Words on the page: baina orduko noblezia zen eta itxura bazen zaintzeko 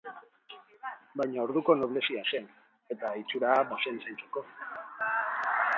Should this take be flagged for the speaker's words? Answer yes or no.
no